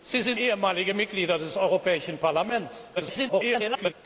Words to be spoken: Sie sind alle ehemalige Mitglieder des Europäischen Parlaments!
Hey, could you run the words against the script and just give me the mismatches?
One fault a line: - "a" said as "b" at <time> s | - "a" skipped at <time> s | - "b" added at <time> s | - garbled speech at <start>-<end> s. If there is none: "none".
- "alle" skipped at 0.4 s
- garbled speech at 3.0-3.9 s